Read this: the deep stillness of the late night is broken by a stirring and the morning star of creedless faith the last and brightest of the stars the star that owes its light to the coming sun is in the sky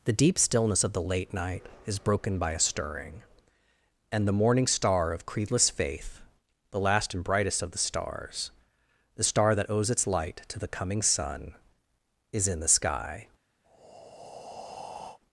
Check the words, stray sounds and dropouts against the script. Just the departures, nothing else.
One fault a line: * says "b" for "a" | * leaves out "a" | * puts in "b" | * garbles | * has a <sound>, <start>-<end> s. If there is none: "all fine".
* has a breath, 13.6-15.2 s